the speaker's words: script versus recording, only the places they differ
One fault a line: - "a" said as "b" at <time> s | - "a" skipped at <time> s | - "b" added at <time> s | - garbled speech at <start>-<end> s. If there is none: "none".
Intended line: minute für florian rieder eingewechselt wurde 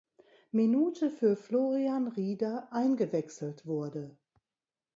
none